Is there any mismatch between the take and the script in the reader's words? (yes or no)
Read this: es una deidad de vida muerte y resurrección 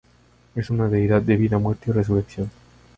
no